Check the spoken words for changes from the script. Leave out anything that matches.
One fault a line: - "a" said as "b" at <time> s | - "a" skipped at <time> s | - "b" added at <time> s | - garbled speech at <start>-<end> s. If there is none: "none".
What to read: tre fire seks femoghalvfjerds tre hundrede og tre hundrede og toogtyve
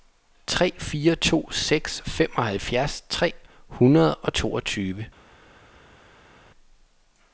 - "to" added at 1.1 s
- "tre hundrede og" skipped at 4.4 s